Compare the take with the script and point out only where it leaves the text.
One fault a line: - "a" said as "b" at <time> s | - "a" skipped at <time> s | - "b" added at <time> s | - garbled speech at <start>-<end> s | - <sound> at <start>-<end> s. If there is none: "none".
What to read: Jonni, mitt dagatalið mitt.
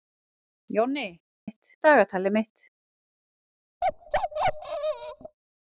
- bark at 3.8-5.4 s